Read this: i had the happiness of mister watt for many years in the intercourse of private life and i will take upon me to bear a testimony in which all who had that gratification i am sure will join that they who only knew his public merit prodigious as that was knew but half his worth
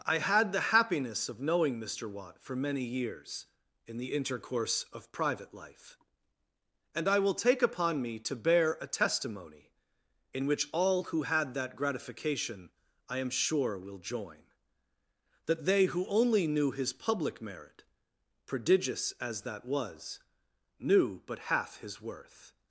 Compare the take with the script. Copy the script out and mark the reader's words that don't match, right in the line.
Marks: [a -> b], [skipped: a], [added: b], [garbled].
i had the happiness of [added: knowing] mister watt for many years in the intercourse of private life and i will take upon me to bear a testimony in which all who had that gratification i am sure will join that they who only knew his public merit prodigious as that was knew but half his worth